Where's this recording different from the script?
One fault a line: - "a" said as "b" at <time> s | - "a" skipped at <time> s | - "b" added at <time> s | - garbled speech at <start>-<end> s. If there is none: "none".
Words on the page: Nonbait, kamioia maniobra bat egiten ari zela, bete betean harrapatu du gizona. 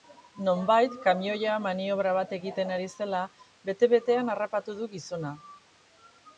none